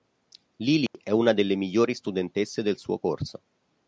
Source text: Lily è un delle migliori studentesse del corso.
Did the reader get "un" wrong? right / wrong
wrong